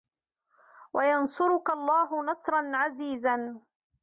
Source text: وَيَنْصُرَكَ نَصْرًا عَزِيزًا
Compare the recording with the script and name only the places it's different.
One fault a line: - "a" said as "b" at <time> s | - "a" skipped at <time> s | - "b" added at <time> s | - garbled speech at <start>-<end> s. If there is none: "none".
- "اللَّهُ" added at 1.7 s